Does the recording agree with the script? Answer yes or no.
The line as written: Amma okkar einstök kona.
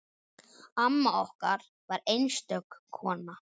no